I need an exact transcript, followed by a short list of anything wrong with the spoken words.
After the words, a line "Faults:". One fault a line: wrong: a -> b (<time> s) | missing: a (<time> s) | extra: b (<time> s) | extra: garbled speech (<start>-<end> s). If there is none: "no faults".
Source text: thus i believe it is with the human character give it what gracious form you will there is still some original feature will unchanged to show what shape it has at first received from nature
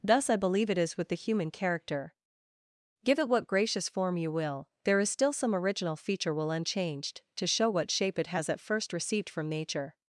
thus i believe it is with the human character give it what gracious form you will there is still some original feature will unchanged to show what shape it has at first received from nature
Faults:
no faults